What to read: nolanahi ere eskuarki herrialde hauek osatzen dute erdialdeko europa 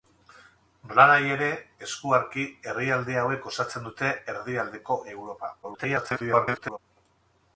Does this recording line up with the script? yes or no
no